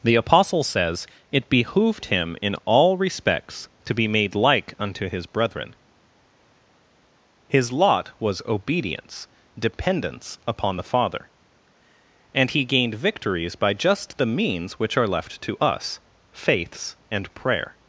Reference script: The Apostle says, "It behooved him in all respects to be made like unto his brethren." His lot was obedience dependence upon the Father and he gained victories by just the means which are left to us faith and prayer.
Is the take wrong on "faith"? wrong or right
wrong